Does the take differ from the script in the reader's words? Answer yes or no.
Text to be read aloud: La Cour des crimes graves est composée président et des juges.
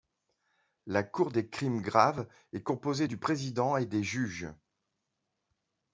yes